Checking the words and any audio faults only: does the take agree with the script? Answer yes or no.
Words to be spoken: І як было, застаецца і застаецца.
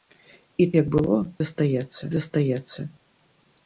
yes